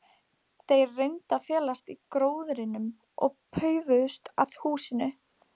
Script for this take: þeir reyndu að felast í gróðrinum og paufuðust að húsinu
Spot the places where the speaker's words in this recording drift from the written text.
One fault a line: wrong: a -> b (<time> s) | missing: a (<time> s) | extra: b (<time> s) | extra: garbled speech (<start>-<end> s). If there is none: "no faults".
no faults